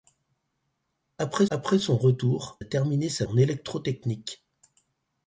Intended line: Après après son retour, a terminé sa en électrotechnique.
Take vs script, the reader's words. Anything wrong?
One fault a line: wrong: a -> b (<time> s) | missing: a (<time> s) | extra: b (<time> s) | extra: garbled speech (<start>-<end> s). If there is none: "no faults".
no faults